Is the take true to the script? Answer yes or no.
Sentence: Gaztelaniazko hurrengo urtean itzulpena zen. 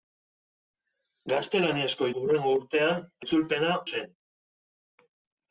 yes